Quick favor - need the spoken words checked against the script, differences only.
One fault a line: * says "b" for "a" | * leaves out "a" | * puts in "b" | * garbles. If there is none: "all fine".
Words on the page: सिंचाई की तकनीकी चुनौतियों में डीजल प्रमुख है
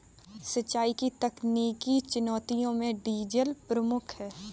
all fine